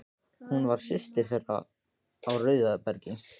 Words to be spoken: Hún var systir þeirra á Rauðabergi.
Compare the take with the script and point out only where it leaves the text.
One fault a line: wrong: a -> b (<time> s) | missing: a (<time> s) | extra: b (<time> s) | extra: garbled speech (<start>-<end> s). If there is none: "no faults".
no faults